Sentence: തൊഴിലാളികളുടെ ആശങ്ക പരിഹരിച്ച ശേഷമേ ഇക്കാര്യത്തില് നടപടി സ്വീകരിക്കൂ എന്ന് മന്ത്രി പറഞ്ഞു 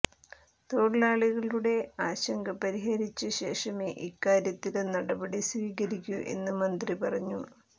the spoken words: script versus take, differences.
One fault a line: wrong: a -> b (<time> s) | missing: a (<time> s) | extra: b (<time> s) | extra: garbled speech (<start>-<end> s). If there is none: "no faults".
no faults